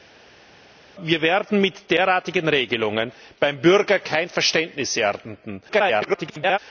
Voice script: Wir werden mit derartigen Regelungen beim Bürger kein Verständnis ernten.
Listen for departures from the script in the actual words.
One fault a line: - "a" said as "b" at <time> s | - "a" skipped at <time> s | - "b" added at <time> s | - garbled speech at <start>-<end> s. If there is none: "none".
- garbled speech at 5.7-6.6 s